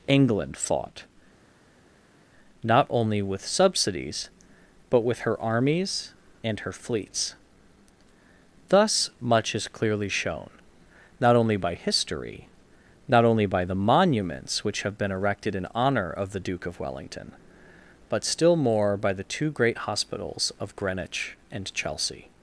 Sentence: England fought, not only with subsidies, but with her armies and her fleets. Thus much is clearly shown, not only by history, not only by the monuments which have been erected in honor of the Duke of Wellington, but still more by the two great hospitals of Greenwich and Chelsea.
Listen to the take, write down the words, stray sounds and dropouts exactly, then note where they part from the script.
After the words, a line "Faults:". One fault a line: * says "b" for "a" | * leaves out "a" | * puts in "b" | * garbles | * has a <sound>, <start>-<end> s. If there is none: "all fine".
England fought, not only with subsidies, but with her armies and her fleets. Thus much is clearly shown, not only by history, not only by the monuments which have been erected in honor of the Duke of Wellington, but still more by the two great hospitals of Greenwich and Chelsea.
Faults:
all fine